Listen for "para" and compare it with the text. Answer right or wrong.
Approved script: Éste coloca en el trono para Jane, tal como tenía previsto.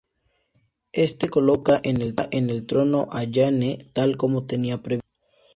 wrong